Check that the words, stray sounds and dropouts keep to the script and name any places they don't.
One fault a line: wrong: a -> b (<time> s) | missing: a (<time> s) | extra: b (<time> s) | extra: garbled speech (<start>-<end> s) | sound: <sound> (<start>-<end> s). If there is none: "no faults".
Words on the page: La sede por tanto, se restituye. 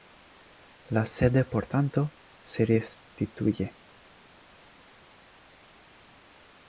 no faults